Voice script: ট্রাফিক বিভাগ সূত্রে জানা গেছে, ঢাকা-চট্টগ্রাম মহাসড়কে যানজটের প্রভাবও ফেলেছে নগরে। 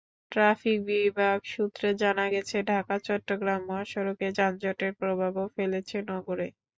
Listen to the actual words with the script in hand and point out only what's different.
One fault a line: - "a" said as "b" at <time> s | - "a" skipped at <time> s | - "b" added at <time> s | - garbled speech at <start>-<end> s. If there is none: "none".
none